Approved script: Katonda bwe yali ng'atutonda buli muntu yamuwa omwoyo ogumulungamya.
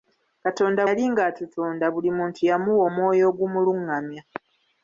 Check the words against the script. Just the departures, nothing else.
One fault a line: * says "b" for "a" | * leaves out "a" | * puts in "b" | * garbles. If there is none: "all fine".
* leaves out "bwe"